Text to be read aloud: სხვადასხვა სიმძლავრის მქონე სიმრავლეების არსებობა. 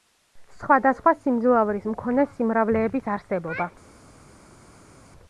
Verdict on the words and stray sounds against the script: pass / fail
pass